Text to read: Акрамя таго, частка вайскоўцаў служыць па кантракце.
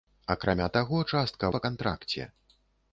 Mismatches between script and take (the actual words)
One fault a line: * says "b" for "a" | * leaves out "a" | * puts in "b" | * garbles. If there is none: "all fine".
* leaves out "вайскоўцаў служыць"